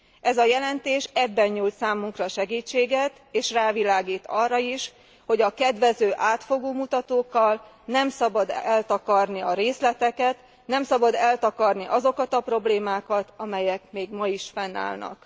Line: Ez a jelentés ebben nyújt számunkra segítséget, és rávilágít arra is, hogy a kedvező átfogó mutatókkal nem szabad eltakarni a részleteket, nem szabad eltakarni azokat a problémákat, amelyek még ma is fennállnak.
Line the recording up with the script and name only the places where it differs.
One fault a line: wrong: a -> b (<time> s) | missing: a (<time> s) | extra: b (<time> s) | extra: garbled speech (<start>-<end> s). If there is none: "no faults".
no faults